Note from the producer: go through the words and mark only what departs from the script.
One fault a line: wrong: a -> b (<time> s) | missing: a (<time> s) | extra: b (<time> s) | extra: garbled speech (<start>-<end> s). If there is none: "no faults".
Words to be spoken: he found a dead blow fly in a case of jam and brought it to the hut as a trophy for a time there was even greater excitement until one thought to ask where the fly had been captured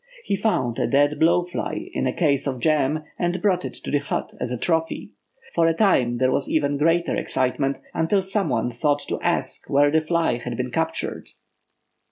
extra: some (8.2 s)